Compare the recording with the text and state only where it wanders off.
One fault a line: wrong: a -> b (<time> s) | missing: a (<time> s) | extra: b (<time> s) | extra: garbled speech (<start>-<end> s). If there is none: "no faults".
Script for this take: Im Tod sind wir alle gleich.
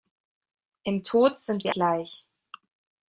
missing: alle (1.8 s)